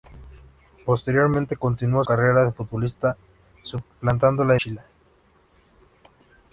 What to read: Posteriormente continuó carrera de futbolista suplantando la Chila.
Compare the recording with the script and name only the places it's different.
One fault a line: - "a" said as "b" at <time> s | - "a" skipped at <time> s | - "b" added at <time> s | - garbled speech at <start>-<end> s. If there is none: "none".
none